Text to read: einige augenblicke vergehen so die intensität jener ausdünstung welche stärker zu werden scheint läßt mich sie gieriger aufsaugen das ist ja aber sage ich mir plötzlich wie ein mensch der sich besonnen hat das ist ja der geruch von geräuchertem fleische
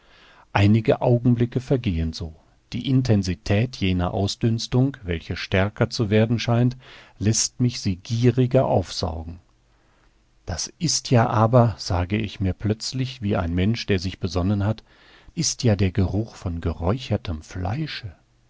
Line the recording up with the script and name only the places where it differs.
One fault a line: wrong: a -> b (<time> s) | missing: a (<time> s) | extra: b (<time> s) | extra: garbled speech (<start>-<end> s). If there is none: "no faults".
missing: das (14.8 s)